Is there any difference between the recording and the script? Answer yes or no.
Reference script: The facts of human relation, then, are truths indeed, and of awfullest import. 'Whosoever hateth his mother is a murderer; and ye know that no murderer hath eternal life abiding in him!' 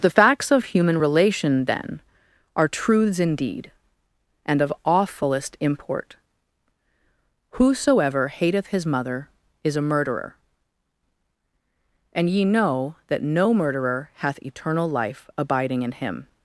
no